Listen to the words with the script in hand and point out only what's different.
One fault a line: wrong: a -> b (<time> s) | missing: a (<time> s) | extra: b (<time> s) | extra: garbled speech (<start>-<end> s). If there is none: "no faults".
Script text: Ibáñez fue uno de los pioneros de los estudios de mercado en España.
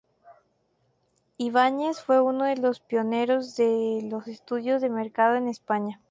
no faults